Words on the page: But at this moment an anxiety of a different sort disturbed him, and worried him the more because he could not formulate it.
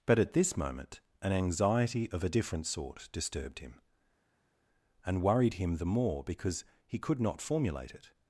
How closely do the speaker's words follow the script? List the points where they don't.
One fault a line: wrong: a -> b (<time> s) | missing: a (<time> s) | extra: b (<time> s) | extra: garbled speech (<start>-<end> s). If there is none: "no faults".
no faults